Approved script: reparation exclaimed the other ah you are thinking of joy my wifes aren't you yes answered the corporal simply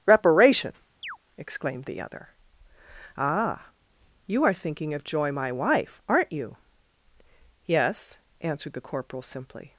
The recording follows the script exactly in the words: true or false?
false